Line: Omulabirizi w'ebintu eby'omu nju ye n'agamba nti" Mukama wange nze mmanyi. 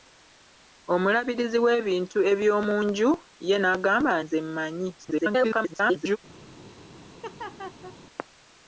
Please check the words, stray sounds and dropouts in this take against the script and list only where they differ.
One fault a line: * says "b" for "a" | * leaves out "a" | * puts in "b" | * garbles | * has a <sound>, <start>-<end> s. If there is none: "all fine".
* leaves out "nti Mukama wange"
* garbles
* has a laugh, 7.2-8.0 s